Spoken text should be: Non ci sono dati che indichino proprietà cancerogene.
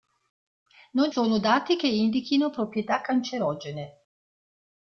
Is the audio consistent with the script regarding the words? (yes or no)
no